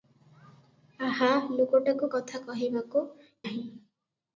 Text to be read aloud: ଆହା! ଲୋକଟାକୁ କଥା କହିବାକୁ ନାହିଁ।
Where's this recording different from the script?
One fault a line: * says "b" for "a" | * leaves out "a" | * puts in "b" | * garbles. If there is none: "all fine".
all fine